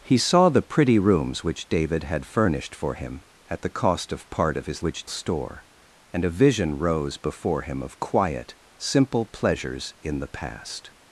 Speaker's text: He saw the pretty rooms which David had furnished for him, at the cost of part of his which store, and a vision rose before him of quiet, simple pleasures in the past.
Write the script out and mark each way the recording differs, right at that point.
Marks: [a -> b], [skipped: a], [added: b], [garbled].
He saw the pretty rooms which David had furnished for him, at the cost of part of his which store, and a vision rose before him of quiet, simple pleasures in the past.